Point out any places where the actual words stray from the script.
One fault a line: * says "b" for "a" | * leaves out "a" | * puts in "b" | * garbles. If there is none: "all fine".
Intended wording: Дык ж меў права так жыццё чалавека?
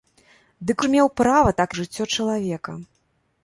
all fine